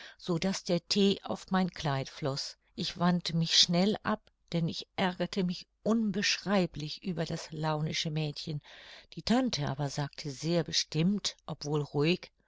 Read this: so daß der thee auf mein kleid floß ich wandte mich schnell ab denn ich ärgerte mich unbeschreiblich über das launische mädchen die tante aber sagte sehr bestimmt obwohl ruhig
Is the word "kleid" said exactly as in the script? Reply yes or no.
yes